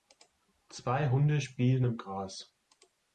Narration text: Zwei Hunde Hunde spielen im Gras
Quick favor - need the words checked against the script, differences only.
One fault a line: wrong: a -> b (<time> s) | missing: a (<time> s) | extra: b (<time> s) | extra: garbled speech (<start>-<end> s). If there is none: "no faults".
missing: Hunde (1.4 s)